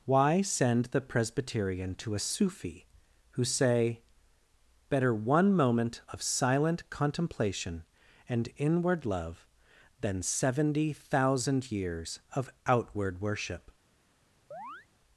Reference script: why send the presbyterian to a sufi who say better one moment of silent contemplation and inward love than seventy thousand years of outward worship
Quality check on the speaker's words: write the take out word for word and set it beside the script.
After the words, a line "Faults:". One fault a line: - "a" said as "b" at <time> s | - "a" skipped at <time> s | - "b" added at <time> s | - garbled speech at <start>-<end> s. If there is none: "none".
why send the presbyterian to a sufi who say better one moment of silent contemplation and inward love than seventy thousand years of outward worship
Faults:
none